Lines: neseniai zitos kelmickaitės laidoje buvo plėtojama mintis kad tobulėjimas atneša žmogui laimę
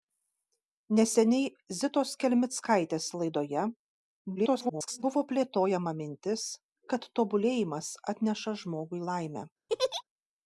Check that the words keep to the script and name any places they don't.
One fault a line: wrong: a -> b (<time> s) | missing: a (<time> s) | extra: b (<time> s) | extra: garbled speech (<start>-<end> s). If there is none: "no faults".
extra: garbled speech (4.4-5.0 s)